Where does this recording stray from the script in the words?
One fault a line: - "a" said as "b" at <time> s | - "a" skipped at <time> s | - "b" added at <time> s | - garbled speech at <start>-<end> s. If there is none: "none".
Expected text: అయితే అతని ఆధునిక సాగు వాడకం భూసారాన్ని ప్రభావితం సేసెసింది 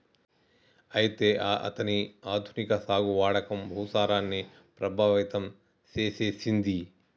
none